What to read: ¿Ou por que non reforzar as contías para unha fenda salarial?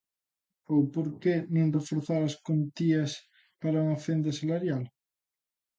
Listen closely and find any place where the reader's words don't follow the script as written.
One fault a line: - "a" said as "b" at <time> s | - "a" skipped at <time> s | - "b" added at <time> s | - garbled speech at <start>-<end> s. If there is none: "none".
none